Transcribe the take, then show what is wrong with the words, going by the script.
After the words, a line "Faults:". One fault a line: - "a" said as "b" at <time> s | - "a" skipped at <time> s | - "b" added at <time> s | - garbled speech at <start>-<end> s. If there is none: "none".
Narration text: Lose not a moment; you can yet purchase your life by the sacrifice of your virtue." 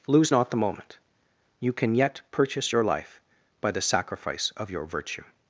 Lose not the moment; you can yet purchase your life by the sacrifice of your virtue."
Faults:
- "a" said as "the" at 0.5 s